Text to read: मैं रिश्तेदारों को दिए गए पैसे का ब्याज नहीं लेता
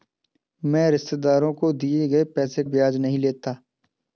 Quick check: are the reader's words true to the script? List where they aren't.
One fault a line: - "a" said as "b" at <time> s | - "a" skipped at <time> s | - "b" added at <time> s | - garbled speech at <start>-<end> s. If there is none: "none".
- "का" skipped at 2.6 s